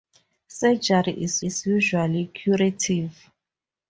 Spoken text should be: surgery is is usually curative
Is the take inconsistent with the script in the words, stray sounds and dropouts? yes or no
no